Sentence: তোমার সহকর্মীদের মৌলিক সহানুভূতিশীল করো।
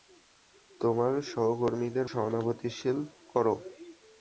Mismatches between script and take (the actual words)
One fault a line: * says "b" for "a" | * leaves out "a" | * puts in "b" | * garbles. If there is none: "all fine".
* leaves out "মৌলিক"